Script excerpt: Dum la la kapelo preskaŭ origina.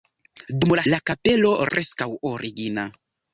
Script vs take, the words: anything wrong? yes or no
no